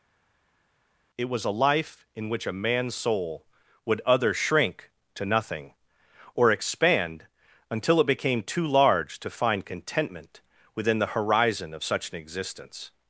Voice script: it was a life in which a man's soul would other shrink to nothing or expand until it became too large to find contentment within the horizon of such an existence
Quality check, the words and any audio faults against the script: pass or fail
pass